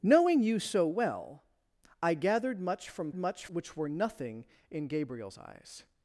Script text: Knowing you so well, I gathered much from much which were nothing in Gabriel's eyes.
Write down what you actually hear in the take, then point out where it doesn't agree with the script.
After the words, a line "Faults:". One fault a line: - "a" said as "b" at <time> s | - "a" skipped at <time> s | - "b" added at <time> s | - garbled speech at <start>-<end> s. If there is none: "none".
Knowing you so well, I gathered much from much which were nothing in Gabriel's eyes.
Faults:
none